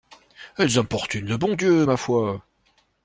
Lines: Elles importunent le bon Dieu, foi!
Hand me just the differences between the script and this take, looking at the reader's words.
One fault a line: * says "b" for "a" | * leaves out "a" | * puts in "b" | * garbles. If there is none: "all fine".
* puts in "ma"